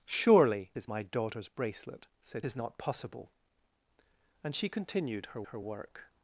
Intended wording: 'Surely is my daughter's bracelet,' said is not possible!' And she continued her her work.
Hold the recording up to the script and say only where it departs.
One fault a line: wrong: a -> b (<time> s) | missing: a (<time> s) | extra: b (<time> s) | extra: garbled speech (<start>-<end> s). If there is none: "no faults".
no faults